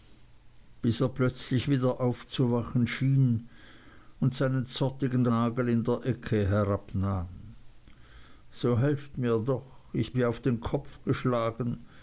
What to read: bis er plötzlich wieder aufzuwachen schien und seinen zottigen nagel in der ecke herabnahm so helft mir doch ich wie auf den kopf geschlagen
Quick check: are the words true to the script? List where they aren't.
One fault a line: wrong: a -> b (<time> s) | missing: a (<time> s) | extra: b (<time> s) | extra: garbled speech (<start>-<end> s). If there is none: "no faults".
no faults